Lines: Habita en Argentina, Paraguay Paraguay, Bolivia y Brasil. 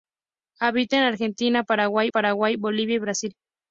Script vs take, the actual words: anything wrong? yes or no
no